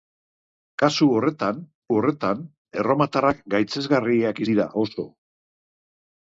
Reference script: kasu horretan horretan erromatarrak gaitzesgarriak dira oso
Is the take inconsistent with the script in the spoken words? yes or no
no